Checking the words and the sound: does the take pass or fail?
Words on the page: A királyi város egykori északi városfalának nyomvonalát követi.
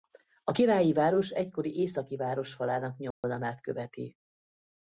fail